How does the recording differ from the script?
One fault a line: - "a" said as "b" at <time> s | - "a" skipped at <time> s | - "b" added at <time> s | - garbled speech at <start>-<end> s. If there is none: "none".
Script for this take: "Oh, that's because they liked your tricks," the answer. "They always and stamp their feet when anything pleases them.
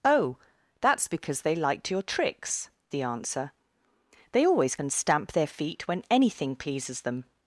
none